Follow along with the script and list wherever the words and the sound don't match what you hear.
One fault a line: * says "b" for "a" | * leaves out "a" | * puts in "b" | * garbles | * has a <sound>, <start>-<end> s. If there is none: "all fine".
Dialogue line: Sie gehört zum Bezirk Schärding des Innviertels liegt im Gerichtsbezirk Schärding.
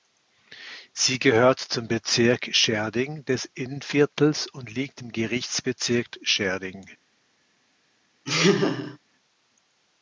* puts in "und"
* has a laugh, 8.3-9.0 s